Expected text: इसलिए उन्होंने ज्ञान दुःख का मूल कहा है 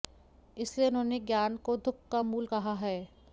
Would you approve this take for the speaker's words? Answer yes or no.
no